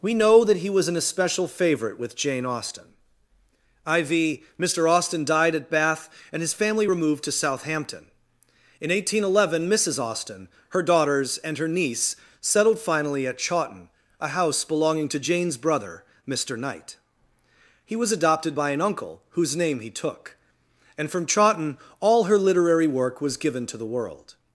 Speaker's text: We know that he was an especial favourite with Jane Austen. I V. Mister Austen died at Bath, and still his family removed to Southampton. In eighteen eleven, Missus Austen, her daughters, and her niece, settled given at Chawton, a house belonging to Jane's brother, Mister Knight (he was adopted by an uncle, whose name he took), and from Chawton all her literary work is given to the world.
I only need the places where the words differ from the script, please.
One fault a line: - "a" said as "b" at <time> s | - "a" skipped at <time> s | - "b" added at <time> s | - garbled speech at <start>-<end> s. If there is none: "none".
- "still" skipped at 6.4 s
- "given" said as "finally" at 12.8 s
- "is" said as "was" at 23.2 s